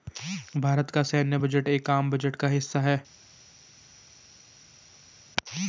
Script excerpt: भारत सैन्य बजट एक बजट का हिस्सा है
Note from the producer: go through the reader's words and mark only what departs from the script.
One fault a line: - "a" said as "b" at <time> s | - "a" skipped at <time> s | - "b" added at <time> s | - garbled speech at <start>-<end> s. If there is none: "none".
- "का" added at 0.9 s
- "आम" added at 1.9 s